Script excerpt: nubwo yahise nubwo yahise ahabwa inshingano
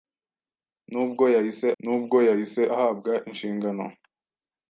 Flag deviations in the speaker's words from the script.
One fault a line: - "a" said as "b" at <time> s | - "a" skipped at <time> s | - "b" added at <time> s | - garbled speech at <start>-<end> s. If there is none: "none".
none